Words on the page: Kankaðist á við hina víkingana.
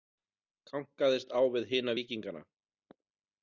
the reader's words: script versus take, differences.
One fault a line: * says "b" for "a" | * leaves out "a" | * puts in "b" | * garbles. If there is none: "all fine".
all fine